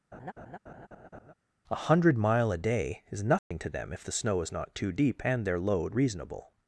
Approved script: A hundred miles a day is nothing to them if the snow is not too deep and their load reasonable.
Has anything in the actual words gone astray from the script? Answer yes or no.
yes